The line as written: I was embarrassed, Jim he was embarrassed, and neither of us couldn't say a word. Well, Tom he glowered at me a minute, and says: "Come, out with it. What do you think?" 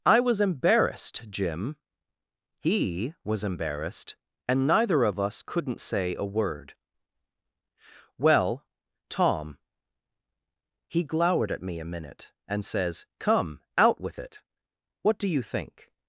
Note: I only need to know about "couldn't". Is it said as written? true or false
true